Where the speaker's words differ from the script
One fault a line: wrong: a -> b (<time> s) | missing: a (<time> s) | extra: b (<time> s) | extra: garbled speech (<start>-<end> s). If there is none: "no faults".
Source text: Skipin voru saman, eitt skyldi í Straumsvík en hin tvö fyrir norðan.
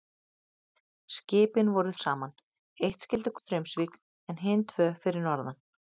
no faults